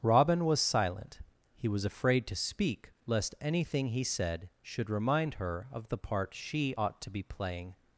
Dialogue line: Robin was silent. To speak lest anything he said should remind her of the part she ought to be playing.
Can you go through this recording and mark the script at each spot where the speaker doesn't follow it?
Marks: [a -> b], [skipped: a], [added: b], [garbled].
Robin was silent. [added: He was afraid] To speak lest anything he said should remind her of the part she ought to be playing.